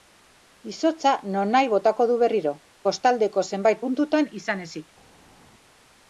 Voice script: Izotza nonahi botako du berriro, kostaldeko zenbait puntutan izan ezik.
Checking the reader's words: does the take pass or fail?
pass